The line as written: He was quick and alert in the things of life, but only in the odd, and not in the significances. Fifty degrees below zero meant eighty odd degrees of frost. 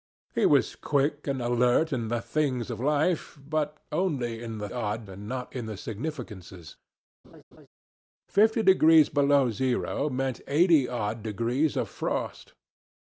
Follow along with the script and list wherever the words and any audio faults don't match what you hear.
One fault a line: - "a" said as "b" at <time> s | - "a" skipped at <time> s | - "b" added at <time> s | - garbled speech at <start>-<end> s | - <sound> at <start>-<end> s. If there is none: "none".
- laugh at 7.2-7.7 s